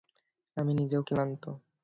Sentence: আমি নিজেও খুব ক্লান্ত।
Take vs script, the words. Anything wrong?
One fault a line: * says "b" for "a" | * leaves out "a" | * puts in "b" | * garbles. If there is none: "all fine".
* leaves out "খুব"